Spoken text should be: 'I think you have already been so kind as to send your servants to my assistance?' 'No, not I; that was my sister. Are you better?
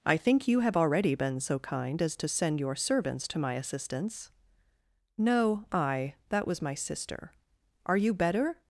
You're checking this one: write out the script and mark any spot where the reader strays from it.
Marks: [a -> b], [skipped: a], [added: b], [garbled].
'I think you have already been so kind as to send your servants to my assistance?' 'No, [skipped: not] I; that was my sister. Are you better?